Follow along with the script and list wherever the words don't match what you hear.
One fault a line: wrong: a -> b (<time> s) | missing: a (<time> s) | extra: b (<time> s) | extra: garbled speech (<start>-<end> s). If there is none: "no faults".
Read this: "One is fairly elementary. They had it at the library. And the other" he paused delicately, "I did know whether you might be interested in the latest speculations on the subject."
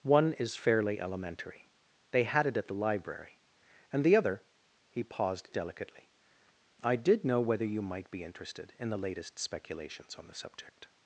no faults